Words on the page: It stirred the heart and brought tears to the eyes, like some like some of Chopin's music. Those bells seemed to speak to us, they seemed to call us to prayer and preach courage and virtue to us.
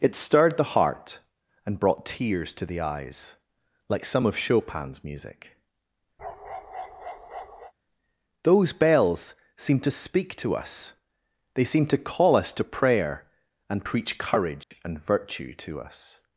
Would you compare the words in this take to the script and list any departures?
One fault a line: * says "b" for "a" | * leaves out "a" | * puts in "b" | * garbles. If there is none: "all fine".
* leaves out "like some"